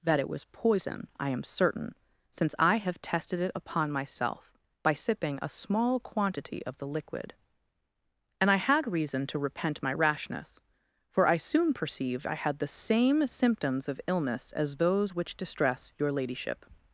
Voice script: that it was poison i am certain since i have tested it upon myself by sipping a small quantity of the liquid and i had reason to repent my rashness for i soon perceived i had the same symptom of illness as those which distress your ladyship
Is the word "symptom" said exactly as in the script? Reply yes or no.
no